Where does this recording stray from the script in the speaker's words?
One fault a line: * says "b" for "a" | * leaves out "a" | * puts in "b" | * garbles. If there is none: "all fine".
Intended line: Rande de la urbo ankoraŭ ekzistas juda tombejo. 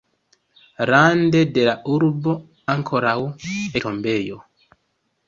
* leaves out "ekzistas juda"